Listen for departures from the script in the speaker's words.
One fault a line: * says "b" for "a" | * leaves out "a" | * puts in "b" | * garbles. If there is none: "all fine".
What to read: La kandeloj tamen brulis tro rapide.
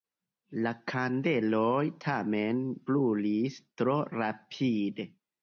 all fine